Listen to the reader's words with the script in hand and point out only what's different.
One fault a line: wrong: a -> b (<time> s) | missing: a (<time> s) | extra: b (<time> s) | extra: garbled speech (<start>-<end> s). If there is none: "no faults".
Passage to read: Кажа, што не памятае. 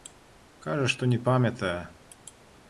no faults